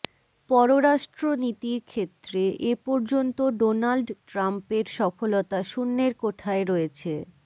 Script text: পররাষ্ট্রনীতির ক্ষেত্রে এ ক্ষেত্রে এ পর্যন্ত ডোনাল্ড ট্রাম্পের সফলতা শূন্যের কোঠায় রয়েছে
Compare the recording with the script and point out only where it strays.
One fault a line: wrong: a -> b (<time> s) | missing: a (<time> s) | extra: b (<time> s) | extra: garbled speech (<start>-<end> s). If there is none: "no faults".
missing: ক্ষেত্রে এ (2.8 s)